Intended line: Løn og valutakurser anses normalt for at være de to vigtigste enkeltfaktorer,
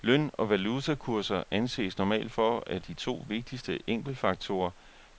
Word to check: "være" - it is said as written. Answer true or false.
false